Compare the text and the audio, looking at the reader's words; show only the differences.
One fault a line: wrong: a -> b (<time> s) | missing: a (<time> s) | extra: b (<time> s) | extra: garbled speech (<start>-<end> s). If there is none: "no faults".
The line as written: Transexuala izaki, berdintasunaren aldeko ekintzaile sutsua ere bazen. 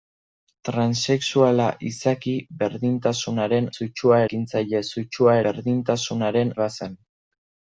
wrong: aldeko -> sutsua (3.7 s)
wrong: ere -> berdintasunaren (5.5 s)